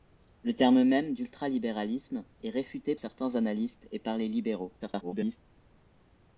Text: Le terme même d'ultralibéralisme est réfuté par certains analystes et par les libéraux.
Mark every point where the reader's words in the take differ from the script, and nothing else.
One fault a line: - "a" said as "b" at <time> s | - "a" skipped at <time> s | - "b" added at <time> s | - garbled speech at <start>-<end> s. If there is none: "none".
- "par" skipped at 3.0 s
- garbled speech at 4.8-5.4 s